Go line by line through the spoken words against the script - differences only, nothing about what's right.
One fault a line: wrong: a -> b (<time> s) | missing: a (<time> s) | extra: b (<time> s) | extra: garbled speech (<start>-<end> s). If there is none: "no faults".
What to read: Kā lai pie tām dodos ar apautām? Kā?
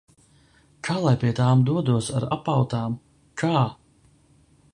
no faults